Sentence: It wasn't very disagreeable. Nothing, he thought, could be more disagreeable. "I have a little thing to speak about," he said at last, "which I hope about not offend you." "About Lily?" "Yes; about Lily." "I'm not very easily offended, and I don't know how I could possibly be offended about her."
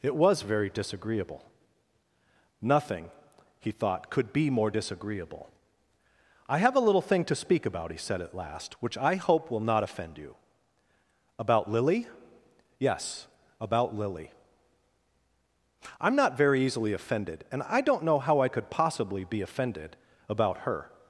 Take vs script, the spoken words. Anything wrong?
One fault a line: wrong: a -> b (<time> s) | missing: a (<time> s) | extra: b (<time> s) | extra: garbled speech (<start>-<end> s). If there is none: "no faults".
wrong: wasn't -> was (0.1 s)
wrong: about -> will (9.5 s)